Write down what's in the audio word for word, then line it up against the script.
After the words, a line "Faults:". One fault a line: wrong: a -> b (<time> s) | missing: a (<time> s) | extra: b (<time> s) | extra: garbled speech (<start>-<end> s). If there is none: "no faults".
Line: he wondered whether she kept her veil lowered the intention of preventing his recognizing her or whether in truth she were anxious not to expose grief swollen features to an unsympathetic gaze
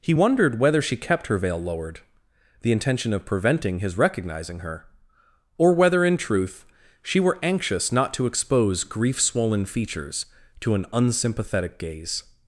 he wondered whether she kept her veil lowered the intention of preventing his recognizing her or whether in truth she were anxious not to expose grief swollen features to an unsympathetic gaze
Faults:
no faults